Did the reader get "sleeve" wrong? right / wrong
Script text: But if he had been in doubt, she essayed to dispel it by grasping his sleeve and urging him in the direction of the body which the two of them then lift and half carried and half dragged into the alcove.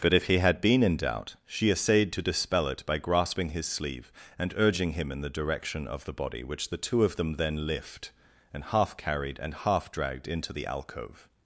right